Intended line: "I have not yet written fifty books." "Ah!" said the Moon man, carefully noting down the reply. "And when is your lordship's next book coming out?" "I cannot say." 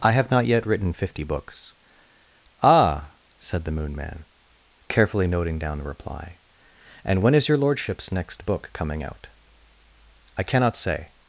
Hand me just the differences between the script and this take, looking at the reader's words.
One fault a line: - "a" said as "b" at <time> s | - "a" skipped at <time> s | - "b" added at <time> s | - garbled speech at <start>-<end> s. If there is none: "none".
none